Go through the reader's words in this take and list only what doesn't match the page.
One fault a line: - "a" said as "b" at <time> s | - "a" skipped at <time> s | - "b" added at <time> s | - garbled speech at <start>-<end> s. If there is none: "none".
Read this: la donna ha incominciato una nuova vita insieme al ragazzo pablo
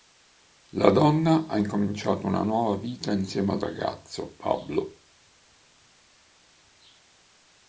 none